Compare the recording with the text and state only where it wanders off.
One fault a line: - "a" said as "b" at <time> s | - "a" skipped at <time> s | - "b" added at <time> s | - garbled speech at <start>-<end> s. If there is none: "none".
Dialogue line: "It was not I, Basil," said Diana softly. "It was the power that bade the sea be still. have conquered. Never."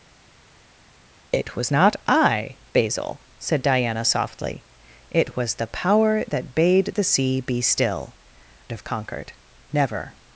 none